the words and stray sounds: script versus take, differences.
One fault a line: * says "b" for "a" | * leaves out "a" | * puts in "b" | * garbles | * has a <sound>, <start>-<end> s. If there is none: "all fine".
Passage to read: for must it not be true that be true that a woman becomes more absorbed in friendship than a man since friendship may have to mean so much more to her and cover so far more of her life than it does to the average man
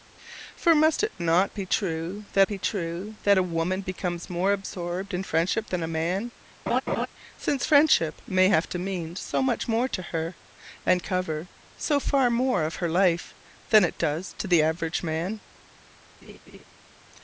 * has a laugh, 6.7-7.1 s
* has a laugh, 16.2-16.6 s